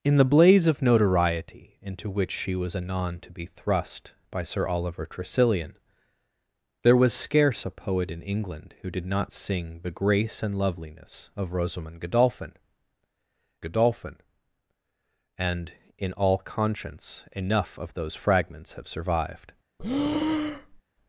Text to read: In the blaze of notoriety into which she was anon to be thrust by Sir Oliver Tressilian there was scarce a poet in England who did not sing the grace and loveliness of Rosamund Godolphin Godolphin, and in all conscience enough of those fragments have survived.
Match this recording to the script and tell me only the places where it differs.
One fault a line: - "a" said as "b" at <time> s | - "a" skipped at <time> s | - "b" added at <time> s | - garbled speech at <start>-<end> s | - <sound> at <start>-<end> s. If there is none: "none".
- breath at 19.8-20.8 s